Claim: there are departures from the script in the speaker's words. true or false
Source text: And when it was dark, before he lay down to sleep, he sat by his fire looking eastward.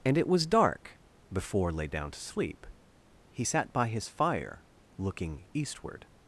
true